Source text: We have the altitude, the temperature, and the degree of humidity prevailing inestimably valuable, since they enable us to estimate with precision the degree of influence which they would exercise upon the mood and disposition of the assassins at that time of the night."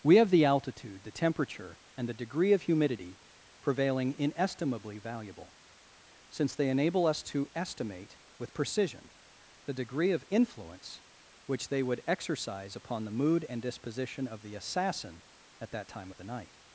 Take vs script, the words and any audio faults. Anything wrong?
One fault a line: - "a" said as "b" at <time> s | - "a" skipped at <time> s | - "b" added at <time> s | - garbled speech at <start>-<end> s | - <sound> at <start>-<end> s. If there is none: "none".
- "assassins" said as "assassin" at 14.6 s